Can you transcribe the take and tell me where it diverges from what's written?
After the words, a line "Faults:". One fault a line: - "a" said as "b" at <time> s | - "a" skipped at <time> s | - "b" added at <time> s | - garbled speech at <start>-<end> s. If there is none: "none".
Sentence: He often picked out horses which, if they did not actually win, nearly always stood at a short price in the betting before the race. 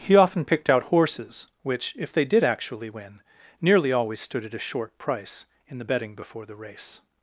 He often picked out horses which, if they did actually win, nearly always stood at a short price in the betting before the race.
Faults:
- "not" skipped at 2.4 s